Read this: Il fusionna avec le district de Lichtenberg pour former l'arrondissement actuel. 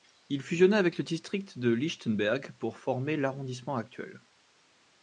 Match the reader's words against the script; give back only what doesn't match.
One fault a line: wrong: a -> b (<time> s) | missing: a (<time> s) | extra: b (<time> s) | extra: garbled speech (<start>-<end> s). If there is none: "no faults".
no faults